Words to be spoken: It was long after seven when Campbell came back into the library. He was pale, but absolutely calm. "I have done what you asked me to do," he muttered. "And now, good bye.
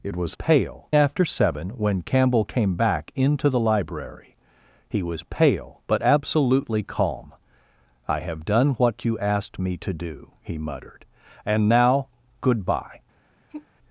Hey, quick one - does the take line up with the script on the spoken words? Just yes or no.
no